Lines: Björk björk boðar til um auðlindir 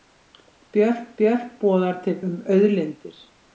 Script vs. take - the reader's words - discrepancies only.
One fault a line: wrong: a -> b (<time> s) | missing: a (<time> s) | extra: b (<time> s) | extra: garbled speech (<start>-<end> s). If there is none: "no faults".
no faults